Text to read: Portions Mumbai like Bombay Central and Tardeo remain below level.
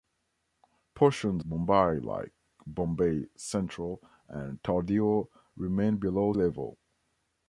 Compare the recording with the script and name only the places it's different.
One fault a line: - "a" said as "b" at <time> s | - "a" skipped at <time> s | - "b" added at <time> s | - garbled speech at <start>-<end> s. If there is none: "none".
none